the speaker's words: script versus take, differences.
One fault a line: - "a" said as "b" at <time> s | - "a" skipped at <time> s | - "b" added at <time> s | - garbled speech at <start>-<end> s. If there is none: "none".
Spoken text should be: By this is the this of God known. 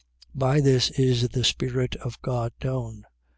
- "this" said as "spirit" at 1.4 s